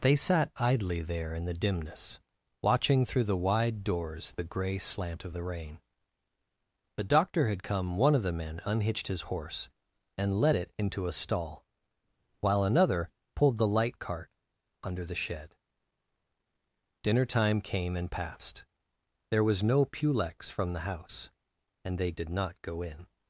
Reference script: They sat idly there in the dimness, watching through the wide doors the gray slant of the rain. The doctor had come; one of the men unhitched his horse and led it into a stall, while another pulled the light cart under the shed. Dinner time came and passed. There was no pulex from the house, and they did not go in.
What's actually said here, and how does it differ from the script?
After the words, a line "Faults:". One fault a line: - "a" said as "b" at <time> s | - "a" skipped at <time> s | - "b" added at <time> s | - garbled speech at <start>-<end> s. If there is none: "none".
They sat idly there in the dimness, watching through the wide doors the gray slant of the rain. The doctor had come; one of the men unhitched his horse and led it into a stall, while another pulled the light cart under the shed. Dinner time came and passed. There was no pulex from the house, and they did not go in.
Faults:
none